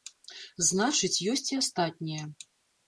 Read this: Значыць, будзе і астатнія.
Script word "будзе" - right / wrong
wrong